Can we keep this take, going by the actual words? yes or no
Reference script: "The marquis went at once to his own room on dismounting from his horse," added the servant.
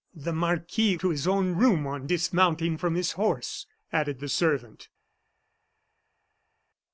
no